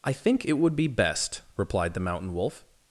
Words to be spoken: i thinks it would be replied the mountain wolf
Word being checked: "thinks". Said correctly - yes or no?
no